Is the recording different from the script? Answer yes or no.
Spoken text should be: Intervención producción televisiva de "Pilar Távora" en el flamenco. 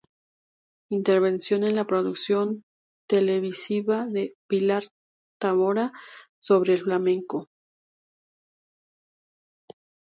yes